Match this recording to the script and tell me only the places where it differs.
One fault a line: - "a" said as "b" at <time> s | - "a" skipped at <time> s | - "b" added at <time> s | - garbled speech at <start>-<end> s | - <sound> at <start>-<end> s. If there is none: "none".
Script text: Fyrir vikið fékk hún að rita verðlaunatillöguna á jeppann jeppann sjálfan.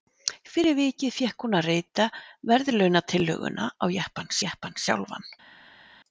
none